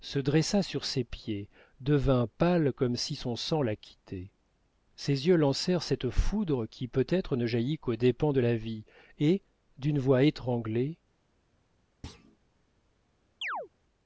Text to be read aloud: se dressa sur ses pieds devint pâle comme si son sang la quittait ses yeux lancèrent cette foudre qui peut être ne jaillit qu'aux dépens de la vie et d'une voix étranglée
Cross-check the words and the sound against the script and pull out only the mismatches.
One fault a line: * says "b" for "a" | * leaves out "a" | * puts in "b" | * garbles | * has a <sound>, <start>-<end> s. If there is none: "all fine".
* has a thud, 12.0-12.4 s
* has a chirp, 13.4-13.7 s